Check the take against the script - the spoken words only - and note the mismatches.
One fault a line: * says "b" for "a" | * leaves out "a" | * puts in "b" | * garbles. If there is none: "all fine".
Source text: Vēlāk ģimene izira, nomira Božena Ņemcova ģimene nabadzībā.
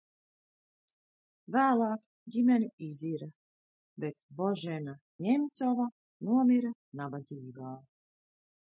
* says "bet" for "nomira"
* says "nomira" for "ģimene"